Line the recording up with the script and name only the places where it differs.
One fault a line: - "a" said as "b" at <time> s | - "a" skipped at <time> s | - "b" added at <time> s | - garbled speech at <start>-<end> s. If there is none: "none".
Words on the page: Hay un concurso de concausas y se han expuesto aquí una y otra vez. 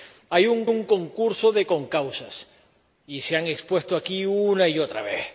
- "un" added at 0.6 s